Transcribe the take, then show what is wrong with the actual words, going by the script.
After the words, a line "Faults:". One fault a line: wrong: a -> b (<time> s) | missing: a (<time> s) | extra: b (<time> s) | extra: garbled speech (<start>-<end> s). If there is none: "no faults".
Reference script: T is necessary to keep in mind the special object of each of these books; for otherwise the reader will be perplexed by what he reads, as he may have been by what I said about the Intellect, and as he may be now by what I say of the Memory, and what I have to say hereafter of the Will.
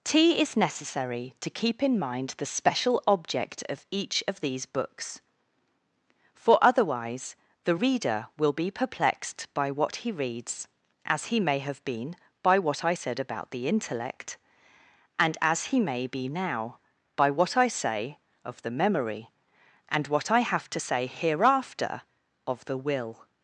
T is necessary to keep in mind the special object of each of these books; for otherwise the reader will be perplexed by what he reads, as he may have been by what I said about the Intellect, and as he may be now by what I say of the Memory, and what I have to say hereafter of the Will.
Faults:
no faults